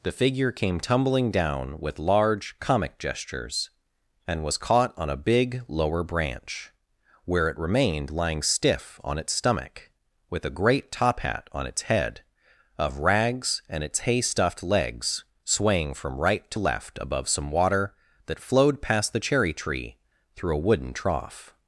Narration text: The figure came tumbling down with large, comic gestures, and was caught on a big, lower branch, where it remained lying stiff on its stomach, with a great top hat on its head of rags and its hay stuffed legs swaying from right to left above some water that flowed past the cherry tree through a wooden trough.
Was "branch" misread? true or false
false